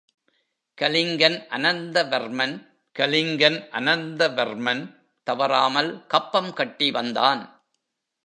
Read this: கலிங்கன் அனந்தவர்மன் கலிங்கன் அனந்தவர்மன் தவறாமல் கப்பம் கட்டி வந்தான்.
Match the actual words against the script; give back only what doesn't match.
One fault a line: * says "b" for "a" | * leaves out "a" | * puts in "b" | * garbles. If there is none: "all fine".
all fine